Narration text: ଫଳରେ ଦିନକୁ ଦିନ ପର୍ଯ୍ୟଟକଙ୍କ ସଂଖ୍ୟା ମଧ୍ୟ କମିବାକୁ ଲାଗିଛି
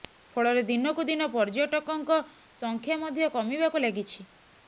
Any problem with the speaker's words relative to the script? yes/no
no